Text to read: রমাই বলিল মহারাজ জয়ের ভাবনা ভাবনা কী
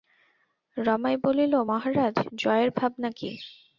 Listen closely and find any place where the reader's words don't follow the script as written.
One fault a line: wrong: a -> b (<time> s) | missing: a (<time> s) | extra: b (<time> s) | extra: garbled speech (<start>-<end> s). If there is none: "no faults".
missing: ভাবনা (3.1 s)